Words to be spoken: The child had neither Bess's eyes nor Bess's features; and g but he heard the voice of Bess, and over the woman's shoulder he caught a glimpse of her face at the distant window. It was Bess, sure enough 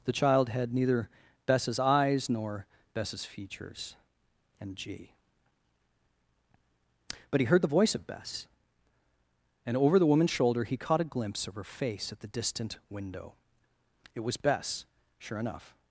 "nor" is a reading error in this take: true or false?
false